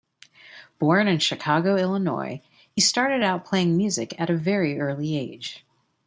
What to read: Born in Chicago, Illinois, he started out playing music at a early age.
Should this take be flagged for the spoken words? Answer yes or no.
yes